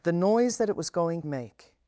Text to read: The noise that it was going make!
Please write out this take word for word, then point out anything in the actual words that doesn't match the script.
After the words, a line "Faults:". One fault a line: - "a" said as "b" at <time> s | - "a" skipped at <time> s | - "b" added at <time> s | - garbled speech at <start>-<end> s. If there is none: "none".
The noise that it was going make!
Faults:
none